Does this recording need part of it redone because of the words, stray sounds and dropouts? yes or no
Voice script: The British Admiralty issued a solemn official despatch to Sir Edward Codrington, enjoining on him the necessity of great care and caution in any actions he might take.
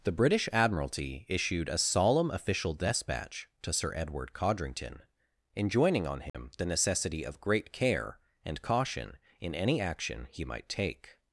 yes